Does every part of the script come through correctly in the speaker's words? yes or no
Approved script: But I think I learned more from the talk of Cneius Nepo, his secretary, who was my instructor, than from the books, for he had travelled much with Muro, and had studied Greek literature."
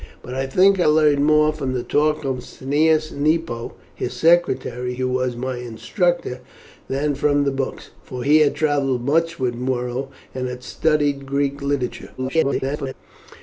no